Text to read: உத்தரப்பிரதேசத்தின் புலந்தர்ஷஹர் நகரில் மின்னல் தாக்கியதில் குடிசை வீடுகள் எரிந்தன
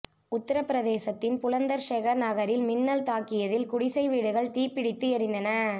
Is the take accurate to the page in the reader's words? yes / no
no